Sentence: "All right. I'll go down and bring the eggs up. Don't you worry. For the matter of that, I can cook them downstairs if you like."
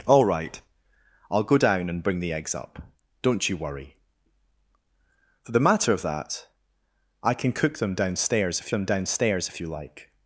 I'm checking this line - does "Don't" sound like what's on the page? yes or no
yes